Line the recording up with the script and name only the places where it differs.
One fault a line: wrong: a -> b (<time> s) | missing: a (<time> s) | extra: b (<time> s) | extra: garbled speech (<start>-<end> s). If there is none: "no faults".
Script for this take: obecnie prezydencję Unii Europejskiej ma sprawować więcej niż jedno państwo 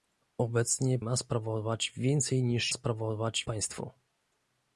missing: prezydencję Unii Europejskiej (1.0 s)
wrong: jedno -> sprawować (2.7 s)